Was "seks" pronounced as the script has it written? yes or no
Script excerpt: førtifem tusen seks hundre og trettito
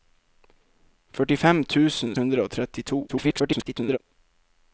no